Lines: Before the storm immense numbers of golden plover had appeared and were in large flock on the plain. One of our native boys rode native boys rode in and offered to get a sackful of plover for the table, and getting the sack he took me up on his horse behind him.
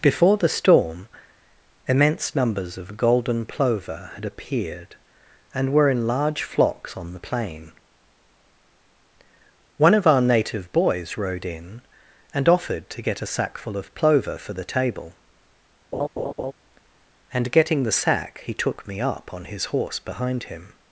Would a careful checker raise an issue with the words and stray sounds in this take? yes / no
yes